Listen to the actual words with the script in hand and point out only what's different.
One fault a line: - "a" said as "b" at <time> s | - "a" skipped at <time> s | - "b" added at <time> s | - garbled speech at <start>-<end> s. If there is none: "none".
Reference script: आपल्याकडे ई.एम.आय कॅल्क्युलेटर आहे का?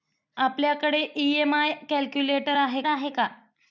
- "आहे" added at 2.9 s